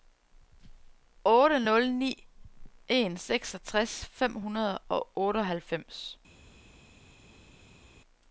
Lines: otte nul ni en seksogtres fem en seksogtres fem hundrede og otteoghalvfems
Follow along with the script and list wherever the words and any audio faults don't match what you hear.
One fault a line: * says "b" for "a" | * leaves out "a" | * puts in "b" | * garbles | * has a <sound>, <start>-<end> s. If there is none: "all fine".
* leaves out "en seksogtres fem"